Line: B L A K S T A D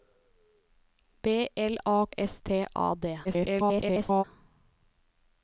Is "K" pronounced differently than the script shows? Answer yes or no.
yes